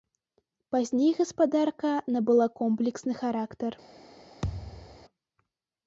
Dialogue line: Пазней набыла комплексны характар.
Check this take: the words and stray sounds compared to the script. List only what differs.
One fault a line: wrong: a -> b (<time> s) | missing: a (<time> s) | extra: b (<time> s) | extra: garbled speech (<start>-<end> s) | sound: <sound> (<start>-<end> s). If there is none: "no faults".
extra: гаспадарка (1.2 s)
sound: thud (4.4-5.1 s)